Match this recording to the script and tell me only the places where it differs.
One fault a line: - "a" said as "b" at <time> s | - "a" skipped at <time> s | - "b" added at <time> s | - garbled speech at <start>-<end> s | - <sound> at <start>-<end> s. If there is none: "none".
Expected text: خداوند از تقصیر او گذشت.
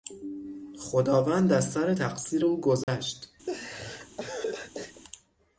- "سر" added at 1.7 s
- dropout at 2.8-2.9 s
- laugh at 3.5-5.0 s